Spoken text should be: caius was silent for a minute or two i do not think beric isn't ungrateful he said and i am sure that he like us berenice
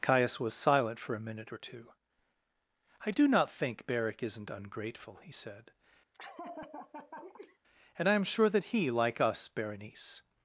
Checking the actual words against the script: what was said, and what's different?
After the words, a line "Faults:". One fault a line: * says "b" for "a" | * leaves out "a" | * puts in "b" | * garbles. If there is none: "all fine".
caius was silent for a minute or two i do not think beric isn't ungrateful he said and i am sure that he like us berenice
Faults:
all fine